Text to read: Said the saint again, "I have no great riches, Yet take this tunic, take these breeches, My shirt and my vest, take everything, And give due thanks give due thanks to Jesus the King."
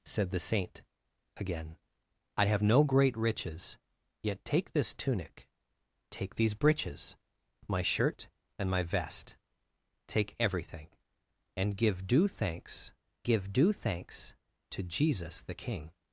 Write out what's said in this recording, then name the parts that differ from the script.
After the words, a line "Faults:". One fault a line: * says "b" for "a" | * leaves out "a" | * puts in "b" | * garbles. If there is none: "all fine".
Said the saint again, "I have no great riches, Yet take this tunic, take these breeches, My shirt and my vest, take everything, And give due thanks give due thanks to Jesus the King."
Faults:
all fine